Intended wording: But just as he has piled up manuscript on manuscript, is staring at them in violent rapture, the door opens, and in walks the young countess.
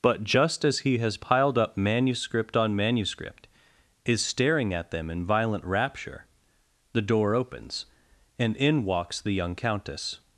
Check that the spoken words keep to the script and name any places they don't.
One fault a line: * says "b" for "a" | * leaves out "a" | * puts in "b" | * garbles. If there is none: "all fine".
all fine